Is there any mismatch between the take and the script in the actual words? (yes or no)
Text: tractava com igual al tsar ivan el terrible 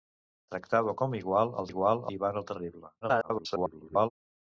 yes